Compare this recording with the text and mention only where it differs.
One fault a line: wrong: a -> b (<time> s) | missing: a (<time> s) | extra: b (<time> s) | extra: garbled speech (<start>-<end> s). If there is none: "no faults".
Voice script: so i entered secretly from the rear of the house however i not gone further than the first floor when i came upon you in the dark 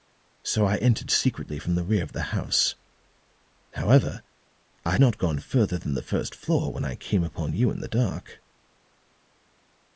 no faults